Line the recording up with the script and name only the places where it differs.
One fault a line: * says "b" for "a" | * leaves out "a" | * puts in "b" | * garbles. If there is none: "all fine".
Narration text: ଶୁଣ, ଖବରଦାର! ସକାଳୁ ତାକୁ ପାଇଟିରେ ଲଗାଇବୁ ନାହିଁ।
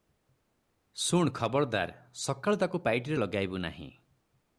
all fine